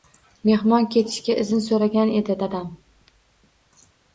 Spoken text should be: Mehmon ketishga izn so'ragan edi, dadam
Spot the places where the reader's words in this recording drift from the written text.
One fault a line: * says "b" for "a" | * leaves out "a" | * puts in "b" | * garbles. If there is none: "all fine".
all fine